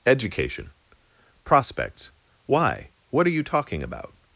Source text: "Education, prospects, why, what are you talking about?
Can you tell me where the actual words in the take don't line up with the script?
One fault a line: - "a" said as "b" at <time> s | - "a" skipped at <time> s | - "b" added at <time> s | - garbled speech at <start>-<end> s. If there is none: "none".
none